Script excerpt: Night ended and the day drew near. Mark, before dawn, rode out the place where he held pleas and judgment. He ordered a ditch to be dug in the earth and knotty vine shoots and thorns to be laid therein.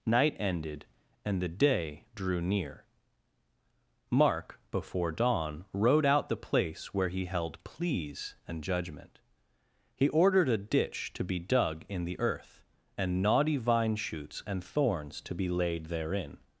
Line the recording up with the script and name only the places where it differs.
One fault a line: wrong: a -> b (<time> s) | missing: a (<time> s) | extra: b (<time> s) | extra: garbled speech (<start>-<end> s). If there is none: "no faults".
no faults